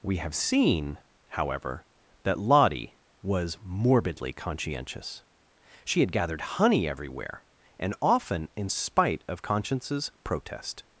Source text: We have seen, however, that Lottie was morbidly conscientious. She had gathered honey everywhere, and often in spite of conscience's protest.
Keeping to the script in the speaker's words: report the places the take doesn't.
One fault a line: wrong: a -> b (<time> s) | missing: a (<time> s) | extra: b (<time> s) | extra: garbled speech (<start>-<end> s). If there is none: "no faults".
no faults